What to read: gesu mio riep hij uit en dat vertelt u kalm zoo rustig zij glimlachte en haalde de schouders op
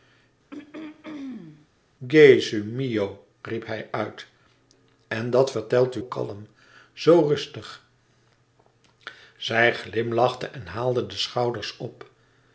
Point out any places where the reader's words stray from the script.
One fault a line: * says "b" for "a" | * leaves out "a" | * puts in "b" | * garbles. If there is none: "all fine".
all fine